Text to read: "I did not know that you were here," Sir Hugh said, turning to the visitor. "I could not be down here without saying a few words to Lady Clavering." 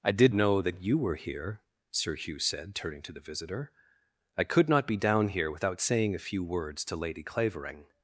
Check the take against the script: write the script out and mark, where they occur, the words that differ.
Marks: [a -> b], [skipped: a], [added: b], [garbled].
"I did [skipped: not] know that you were here," Sir Hugh said, turning to the visitor. "I could not be down here without saying a few words to Lady Clavering."